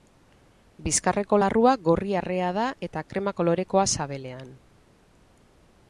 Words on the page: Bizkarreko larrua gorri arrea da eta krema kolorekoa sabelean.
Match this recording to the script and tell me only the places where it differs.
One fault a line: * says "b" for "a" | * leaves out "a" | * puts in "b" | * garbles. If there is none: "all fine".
all fine